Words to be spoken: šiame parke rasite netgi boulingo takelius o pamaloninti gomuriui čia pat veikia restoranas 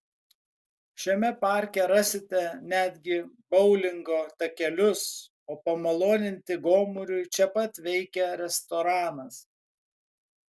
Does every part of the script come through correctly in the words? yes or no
yes